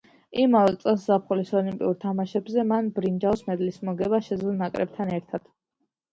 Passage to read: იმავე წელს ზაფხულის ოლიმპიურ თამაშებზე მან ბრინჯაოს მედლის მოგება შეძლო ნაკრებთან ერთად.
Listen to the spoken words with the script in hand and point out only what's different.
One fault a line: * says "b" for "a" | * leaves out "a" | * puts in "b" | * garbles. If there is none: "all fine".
all fine